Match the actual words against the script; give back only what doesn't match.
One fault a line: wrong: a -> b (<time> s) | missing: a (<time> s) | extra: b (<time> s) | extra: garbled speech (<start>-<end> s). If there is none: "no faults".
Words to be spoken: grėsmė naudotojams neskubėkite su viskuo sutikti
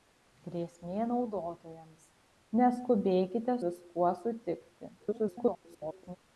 missing: su (3.6 s)
extra: garbled speech (5.0-6.2 s)